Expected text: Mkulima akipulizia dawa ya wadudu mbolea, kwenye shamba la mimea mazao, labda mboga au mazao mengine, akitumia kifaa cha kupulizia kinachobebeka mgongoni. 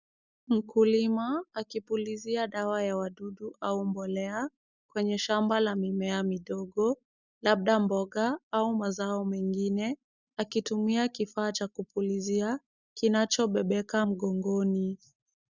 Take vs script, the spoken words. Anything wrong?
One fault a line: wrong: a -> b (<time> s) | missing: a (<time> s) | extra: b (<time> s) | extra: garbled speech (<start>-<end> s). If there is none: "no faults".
extra: au (3.6 s)
wrong: mazao -> midogo (6.2 s)